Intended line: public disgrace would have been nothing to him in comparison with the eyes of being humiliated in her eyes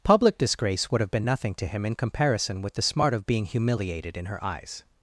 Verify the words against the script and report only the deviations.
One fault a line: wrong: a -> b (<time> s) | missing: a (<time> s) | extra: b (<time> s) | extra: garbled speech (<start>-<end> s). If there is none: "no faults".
wrong: eyes -> smart (2.8 s)